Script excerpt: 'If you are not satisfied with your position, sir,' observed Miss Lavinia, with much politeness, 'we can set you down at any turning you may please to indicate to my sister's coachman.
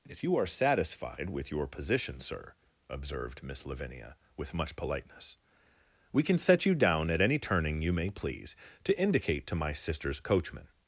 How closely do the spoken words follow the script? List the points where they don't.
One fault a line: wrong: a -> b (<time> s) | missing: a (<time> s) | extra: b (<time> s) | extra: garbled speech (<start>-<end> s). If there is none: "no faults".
missing: not (0.5 s)